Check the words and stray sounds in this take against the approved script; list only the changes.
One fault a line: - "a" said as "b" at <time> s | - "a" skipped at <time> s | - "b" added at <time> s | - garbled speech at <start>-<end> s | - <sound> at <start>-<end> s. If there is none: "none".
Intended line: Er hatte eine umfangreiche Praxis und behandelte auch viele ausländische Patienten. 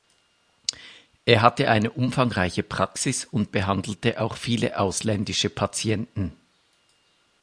none